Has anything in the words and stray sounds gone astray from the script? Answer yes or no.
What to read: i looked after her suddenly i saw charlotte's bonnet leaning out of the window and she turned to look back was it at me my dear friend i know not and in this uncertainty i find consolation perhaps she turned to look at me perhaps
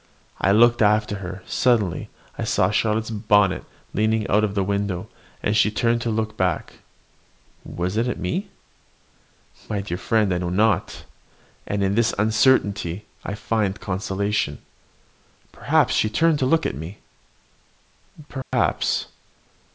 yes